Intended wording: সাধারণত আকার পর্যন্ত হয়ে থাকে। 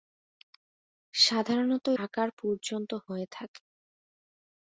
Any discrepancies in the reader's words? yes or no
no